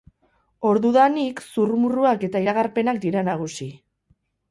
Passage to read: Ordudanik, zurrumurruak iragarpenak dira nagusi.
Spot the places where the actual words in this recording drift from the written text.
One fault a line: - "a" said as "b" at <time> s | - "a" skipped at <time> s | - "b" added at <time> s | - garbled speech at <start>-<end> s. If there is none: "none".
- "eta" added at 2.3 s